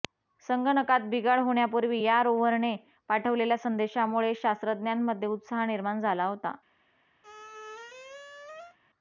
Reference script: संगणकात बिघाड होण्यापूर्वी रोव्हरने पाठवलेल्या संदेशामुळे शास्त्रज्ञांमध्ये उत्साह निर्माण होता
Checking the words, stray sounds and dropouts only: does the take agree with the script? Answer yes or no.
no